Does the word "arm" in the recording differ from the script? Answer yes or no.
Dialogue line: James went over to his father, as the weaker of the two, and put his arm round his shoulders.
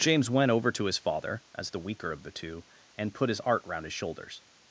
yes